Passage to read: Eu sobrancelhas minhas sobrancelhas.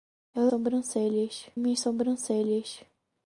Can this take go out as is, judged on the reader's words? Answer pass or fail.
pass